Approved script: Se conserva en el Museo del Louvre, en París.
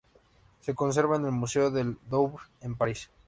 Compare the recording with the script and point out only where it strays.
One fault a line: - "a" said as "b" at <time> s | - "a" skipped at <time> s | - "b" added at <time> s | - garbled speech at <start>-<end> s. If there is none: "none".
none